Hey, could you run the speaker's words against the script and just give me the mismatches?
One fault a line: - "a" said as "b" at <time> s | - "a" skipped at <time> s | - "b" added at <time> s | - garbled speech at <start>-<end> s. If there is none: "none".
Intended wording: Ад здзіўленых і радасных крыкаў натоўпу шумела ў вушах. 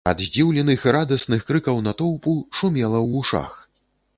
none